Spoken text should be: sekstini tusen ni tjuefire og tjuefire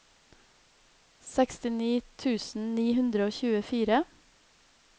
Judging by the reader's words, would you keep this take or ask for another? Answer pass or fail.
fail